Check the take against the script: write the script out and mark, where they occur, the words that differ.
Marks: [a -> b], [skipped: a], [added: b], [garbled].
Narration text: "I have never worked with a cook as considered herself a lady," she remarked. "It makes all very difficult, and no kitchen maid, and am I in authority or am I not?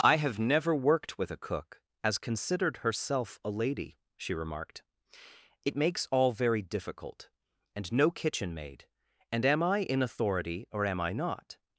"I have never worked with a cook as considered herself a lady," she remarked. "It makes all very difficult, and no kitchen maid, and am I in authority or am I not?